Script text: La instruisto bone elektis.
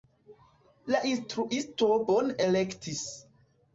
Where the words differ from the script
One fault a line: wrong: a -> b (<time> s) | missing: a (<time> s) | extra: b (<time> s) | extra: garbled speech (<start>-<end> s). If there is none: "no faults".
no faults